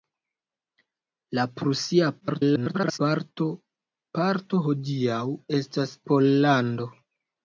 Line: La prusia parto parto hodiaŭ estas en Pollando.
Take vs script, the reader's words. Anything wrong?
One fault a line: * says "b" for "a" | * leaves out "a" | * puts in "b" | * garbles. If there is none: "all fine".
* garbles
* leaves out "en"